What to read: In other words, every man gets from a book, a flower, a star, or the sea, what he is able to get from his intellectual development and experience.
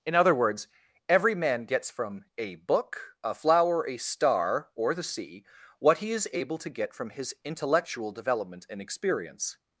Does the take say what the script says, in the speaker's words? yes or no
yes